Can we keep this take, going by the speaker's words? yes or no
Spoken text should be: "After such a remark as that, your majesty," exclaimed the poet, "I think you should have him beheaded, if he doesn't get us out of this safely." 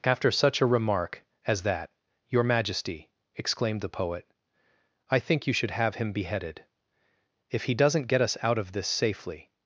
yes